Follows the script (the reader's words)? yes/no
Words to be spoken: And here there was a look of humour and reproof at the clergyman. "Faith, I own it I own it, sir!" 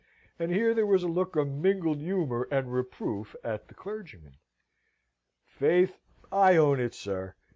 no